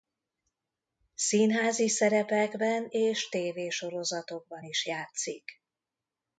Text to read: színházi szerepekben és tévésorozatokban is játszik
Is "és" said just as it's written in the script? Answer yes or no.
yes